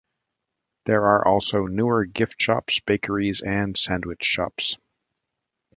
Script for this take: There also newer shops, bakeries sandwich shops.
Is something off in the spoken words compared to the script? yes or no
yes